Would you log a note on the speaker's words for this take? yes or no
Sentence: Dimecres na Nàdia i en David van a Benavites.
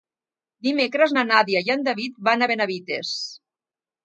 no